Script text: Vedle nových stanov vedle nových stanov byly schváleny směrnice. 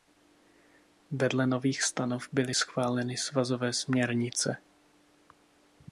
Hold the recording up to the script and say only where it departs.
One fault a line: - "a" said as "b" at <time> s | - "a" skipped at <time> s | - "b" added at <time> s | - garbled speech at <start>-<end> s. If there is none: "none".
- "vedle nových stanov" skipped at 2.3 s
- "svazové" added at 3.2 s